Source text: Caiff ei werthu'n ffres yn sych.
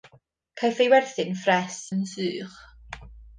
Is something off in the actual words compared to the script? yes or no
no